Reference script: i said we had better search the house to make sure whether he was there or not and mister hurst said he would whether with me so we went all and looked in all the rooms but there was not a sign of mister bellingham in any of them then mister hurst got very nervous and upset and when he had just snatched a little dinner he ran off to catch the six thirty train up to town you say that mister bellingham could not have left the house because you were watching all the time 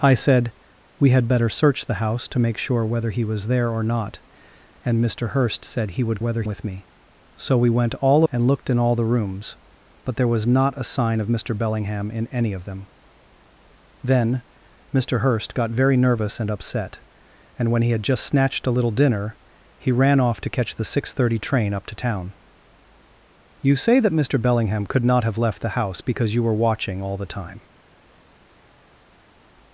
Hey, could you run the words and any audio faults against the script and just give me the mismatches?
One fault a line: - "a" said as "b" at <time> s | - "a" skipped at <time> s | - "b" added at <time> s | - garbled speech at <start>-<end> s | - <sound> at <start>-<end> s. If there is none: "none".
none